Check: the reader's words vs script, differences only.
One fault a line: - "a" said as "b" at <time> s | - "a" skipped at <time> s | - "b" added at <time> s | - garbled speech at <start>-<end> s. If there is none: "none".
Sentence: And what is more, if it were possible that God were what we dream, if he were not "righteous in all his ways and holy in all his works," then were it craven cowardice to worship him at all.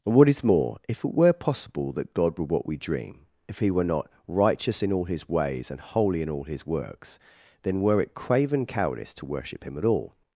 none